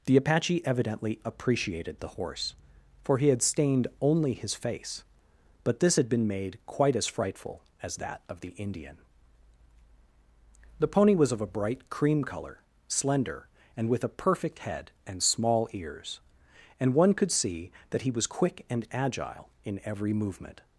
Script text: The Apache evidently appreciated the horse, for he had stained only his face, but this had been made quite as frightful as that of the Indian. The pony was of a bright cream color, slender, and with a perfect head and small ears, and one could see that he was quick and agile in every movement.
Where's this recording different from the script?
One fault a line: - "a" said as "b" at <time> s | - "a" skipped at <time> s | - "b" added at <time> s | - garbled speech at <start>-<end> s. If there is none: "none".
none